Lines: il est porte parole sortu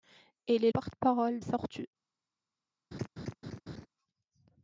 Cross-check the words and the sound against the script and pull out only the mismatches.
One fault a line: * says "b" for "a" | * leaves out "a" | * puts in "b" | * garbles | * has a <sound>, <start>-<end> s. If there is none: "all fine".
* has a laugh, 2.9-3.9 s